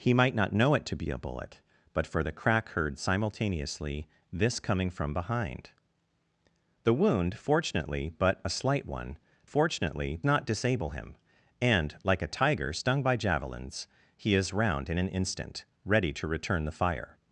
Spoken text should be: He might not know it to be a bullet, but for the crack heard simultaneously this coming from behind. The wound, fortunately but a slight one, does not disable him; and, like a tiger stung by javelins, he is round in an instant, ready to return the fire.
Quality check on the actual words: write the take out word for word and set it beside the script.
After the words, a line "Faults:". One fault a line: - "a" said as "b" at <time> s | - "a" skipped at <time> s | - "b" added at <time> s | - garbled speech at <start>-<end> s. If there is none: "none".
He might not know it to be a bullet, but for the crack heard simultaneously this coming from behind. The wound, fortunately but a slight one, fortunately not disable him; and, like a tiger stung by javelins, he is round in an instant, ready to return the fire.
Faults:
- "does" said as "fortunately" at 9.4 s